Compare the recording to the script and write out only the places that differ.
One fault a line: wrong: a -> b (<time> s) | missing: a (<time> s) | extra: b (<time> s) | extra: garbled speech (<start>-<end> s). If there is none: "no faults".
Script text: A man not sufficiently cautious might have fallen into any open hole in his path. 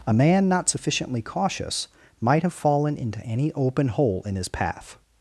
no faults